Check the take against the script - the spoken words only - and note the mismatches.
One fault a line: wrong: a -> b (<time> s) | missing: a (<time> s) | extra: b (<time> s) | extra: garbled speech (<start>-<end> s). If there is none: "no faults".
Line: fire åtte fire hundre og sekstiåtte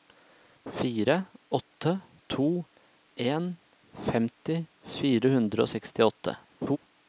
extra: to en femti (2.3 s)